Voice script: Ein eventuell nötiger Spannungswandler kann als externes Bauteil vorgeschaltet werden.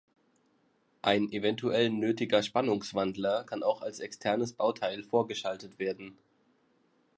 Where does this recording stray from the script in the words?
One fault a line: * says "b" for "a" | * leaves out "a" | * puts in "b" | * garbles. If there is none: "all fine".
* puts in "auch"